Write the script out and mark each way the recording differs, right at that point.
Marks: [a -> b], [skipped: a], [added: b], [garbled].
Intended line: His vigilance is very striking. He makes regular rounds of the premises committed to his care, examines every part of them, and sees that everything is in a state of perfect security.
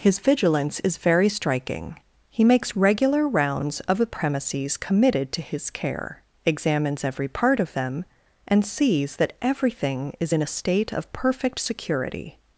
His vigilance is very striking. He makes regular rounds of the premises committed to his care, examines every part of them, and sees that everything is in a state of perfect security.